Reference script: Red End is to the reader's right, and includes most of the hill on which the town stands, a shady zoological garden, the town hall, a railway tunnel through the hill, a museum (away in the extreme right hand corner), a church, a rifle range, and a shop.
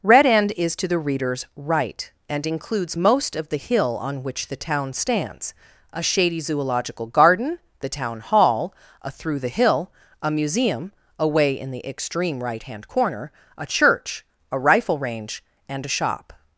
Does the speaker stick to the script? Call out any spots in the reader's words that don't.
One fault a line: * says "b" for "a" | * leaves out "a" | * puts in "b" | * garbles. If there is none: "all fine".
* leaves out "railway tunnel"